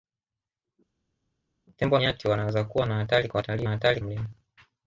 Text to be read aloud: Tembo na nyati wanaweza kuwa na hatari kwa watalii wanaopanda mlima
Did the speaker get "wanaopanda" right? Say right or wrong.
wrong